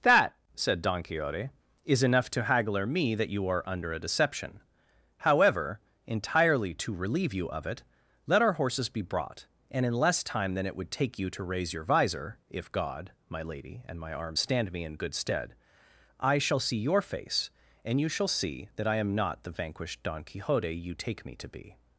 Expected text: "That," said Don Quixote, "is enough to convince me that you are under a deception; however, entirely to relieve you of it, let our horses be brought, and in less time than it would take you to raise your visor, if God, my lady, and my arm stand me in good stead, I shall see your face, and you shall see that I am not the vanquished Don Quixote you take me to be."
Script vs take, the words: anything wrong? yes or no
yes